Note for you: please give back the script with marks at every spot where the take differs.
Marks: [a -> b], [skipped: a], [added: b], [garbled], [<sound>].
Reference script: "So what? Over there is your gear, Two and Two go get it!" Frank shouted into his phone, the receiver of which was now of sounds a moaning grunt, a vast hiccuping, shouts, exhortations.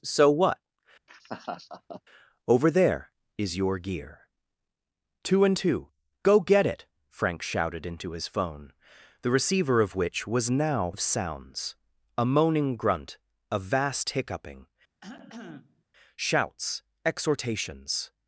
"So what? [laugh] Over there is your gear, Two and Two go get it!" Frank shouted into his phone, the receiver of which was now of sounds a moaning grunt, a vast hiccuping, [cough] shouts, exhortations.